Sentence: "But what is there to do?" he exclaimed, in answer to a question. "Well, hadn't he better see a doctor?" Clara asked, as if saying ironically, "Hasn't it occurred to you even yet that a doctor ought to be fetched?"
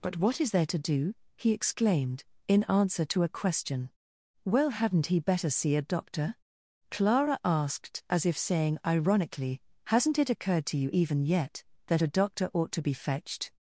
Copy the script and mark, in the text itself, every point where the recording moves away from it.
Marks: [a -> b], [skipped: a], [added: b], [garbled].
"But what is there to do?" he exclaimed, in answer to a question. "Well, hadn't he better see a doctor?" Clara asked, as if saying ironically, "Hasn't it occurred to you even yet that a doctor ought to be fetched?"